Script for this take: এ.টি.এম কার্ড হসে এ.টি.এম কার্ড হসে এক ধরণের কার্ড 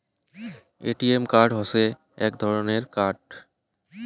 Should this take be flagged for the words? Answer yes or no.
yes